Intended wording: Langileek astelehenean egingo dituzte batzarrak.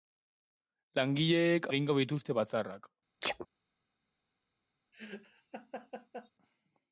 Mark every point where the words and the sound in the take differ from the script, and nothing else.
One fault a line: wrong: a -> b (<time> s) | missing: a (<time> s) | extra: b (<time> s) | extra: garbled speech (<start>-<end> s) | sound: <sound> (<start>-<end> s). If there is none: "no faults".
missing: astelehenean (1.7 s)
sound: sneeze (3.2-3.5 s)
sound: laugh (4.9-6.3 s)